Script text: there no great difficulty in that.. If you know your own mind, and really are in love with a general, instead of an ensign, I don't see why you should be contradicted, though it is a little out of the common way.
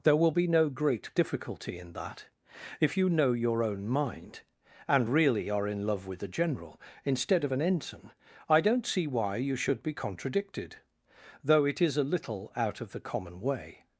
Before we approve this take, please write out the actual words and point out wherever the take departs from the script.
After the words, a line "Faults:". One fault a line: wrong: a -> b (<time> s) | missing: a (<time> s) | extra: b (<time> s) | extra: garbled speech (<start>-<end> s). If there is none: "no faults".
there will be no great difficulty in that.. If you know your own mind, and really are in love with a general, instead of an ensign, I don't see why you should be contradicted, though it is a little out of the common way.
Faults:
extra: will be (0.1 s)